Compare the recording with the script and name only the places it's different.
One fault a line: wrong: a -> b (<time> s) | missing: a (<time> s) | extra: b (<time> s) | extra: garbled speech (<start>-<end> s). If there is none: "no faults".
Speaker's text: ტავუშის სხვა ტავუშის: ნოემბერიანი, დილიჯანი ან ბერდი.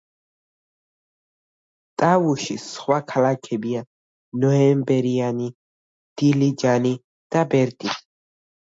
wrong: ტავუშის -> ქალაქებია (3.1 s)
wrong: ან -> და (7.4 s)